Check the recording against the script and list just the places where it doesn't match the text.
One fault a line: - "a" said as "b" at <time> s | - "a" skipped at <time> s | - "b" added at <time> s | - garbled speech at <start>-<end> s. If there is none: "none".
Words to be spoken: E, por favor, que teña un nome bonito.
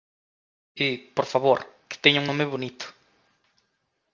none